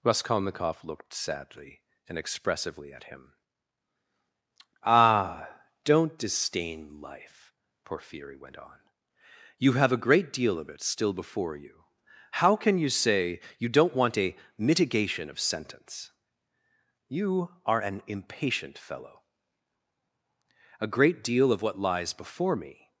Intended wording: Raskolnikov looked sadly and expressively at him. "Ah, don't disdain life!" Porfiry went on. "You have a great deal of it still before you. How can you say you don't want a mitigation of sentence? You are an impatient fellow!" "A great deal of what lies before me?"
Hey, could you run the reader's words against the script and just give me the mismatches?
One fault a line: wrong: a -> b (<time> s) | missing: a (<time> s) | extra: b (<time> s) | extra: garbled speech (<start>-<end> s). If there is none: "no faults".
no faults